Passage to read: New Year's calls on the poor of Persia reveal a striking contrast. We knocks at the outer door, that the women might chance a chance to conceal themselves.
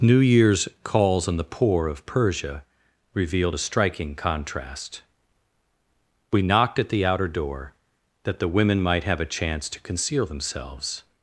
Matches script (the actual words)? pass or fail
fail